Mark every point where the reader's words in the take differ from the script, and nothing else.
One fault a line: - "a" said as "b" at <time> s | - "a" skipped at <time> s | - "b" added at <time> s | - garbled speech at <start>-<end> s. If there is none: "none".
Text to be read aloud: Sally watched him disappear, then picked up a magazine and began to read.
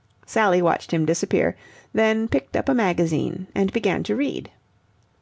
none